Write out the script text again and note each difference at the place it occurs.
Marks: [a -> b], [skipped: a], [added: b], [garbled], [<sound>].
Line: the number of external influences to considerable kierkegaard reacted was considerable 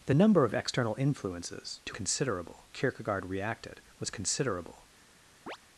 the number of external influences to considerable kierkegaard reacted was considerable [chirp]